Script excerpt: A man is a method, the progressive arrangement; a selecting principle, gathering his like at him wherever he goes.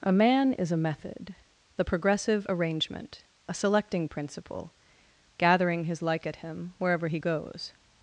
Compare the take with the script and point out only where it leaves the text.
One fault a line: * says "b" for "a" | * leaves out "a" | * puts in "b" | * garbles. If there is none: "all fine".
all fine